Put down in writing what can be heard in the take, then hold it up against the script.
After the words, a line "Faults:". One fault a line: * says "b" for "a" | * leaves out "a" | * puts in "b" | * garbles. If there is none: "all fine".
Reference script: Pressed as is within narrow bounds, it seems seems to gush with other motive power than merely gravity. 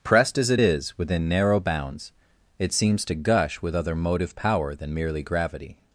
Pressed as it is within narrow bounds, it seems to gush with other motive power than merely gravity.
Faults:
* puts in "it"
* leaves out "seems"